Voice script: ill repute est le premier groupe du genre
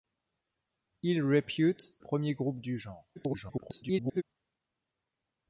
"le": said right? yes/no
no